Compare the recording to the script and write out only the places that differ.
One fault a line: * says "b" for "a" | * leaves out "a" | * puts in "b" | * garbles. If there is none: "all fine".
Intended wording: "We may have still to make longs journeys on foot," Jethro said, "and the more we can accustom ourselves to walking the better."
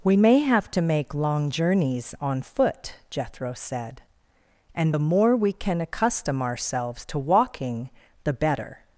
* leaves out "still"
* says "long" for "longs"